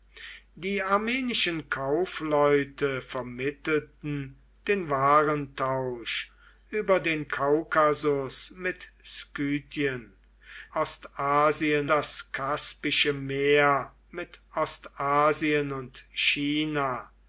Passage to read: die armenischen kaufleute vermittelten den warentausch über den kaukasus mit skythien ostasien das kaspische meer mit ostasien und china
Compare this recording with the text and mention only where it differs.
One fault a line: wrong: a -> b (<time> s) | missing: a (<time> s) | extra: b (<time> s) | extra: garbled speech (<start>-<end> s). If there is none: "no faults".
no faults